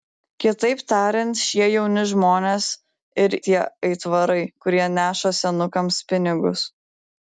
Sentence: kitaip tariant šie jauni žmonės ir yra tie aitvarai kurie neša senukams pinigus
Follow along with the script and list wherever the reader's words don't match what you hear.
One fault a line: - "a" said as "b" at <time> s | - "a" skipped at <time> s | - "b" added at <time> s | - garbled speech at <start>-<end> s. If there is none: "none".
- "yra" skipped at 3.4 s